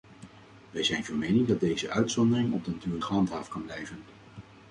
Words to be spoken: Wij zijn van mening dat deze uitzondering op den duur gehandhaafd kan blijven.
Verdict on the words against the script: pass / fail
pass